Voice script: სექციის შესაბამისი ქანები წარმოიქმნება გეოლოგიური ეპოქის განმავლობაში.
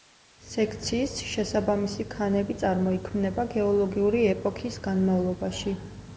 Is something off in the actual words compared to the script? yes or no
no